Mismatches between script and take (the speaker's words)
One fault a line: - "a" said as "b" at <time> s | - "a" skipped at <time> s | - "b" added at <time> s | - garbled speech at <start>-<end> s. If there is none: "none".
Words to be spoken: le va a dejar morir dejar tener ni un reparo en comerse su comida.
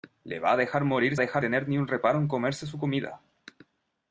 none